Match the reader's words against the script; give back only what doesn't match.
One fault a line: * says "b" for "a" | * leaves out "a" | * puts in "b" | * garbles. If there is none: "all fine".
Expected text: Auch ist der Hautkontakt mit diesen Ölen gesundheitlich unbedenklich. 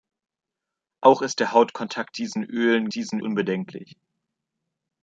* leaves out "mit"
* says "diesen" for "gesundheitlich"